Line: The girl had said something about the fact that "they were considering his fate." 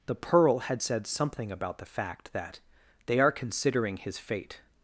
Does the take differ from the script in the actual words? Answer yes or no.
yes